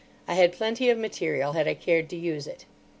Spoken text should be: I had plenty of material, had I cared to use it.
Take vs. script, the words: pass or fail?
pass